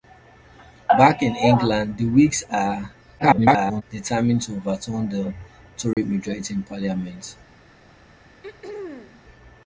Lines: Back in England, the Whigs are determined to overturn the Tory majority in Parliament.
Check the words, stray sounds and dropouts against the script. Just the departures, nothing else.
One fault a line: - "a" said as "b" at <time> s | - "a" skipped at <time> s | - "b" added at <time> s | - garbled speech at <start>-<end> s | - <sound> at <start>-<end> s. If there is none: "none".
- garbled speech at 3.2-3.8 s
- dropout at 5.9-6.0 s
- throat clearing at 8.4-9.2 s